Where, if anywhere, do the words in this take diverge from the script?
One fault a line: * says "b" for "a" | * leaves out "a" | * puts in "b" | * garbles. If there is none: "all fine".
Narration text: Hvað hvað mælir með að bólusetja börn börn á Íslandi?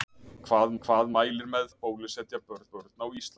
all fine